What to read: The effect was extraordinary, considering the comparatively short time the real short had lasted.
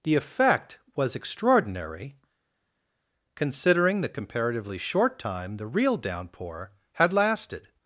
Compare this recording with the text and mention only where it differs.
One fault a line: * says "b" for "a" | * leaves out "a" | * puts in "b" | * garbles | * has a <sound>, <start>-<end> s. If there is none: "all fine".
* says "downpour" for "short"